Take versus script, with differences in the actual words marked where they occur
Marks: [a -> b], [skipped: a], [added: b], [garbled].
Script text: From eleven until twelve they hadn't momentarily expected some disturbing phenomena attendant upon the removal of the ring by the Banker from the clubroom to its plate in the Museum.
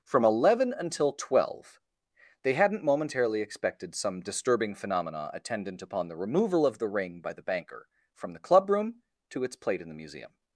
From eleven until twelve they hadn't momentarily expected some disturbing phenomena attendant upon the removal of the ring by the Banker from the clubroom to its plate in the Museum.